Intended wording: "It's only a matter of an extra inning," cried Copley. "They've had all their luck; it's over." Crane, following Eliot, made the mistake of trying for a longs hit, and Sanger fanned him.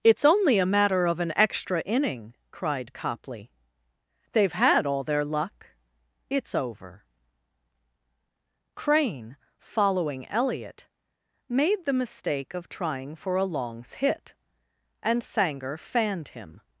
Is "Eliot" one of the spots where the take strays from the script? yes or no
no